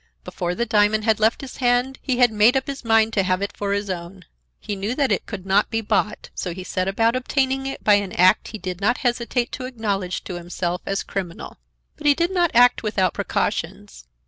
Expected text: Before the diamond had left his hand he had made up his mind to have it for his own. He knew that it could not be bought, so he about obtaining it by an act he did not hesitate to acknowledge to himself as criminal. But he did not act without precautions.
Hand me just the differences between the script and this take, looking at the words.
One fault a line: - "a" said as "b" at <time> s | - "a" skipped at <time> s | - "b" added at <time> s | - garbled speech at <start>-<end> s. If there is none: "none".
- "set" added at 6.6 s